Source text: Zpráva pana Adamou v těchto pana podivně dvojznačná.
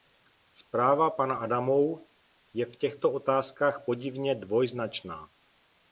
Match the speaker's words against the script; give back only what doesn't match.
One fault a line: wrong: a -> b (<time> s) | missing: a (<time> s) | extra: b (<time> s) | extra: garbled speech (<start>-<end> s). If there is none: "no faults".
extra: je (2.5 s)
wrong: pana -> otázkách (3.1 s)